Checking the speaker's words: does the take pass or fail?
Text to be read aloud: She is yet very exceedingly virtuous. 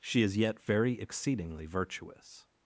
pass